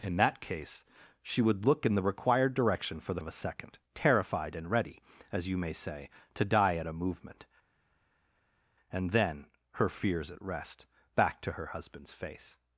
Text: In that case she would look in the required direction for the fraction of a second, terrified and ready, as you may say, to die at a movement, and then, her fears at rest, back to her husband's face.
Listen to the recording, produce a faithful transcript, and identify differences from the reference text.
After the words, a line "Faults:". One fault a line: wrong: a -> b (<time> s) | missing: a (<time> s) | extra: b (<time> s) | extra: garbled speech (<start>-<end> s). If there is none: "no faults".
In that case she would look in the required direction for the of a second, terrified and ready, as you may say, to die at a movement, and then, her fears at rest, back to her husband's face.
Faults:
missing: fraction (3.2 s)